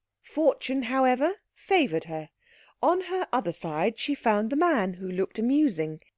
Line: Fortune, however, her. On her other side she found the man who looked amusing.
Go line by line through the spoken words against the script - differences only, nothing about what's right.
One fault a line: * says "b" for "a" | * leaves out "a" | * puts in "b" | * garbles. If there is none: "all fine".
* puts in "favoured"